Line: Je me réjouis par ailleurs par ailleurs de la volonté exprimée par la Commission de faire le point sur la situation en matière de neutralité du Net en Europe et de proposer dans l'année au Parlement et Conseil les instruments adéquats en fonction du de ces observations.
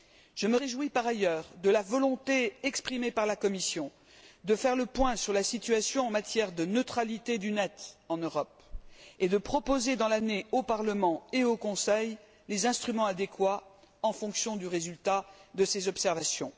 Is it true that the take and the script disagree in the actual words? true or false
true